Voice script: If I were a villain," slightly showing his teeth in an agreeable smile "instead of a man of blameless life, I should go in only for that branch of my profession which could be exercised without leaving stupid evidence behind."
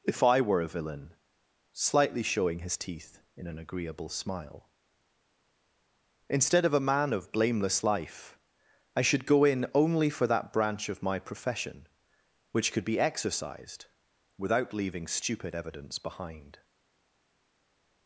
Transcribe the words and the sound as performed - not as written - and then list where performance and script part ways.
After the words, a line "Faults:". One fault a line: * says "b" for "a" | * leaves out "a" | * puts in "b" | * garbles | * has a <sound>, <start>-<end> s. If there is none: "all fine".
If I were a villain," slightly showing his teeth in an agreeable smile "instead of a man of blameless life, I should go in only for that branch of my profession which could be exercised without leaving stupid evidence behind."
Faults:
all fine